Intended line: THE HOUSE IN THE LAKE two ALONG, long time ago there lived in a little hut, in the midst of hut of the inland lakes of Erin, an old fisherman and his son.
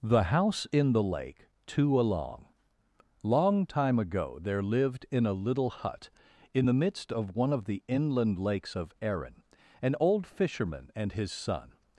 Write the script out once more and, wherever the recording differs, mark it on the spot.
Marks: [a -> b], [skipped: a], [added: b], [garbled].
THE HOUSE IN THE LAKE two ALONG, long time ago there lived in a little hut, in the midst of [hut -> one] of the inland lakes of Erin, an old fisherman and his son.